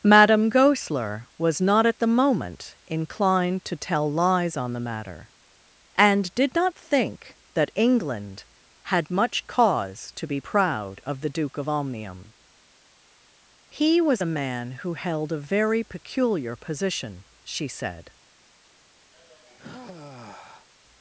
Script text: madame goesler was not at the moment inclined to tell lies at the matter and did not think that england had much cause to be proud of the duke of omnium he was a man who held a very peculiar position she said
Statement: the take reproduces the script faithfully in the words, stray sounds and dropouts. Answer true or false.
false